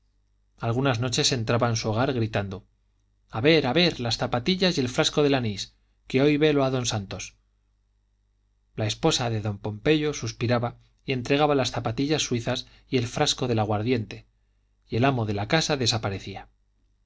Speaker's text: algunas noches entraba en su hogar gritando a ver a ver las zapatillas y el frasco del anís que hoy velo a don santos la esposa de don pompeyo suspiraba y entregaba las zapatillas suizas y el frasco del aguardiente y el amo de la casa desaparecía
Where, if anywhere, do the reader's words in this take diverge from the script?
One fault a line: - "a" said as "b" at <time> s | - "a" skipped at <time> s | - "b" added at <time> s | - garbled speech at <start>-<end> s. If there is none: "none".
none